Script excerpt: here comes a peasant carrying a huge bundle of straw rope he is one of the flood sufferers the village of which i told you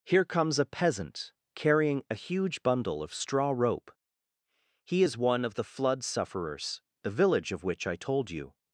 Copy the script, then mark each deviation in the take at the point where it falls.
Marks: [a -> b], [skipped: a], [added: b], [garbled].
here comes a peasant carrying a huge bundle of straw rope he is one of the flood sufferers the village of which i told you